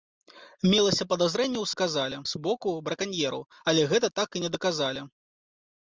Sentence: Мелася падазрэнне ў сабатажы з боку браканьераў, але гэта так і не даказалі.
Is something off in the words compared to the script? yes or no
yes